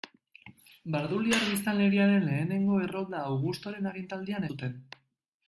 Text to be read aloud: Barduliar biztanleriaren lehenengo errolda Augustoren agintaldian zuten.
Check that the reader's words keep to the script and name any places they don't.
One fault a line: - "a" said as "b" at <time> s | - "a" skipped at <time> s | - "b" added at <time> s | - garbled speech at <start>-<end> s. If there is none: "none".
none